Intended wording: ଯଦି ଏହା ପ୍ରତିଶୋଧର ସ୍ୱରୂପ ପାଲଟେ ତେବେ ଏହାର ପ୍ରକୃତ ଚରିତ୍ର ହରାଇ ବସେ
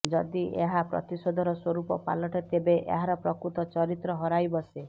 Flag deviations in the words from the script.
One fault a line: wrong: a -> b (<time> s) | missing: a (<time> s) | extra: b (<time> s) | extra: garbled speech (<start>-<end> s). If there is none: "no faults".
no faults